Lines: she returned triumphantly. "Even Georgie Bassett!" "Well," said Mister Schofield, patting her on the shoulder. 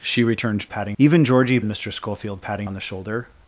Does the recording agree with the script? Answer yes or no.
no